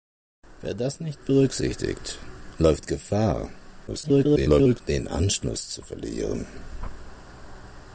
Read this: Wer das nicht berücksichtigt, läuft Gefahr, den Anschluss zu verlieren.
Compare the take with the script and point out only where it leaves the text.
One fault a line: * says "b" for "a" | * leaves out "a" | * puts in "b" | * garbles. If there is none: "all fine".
* garbles